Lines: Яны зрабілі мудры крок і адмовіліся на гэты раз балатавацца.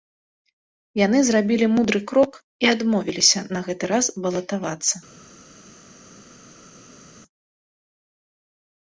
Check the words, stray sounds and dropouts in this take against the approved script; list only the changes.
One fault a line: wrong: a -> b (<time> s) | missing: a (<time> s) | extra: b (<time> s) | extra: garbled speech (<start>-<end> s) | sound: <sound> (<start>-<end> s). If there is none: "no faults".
no faults